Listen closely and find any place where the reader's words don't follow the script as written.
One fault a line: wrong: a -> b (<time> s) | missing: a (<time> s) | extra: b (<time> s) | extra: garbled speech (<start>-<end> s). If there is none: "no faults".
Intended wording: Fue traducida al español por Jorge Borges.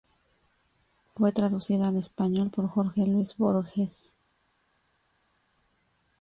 extra: Luis (3.0 s)